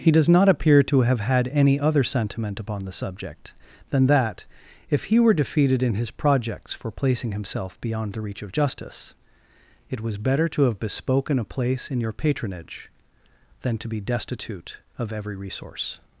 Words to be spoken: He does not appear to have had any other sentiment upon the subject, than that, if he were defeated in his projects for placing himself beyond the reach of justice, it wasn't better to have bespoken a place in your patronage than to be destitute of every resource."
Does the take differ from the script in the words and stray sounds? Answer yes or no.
yes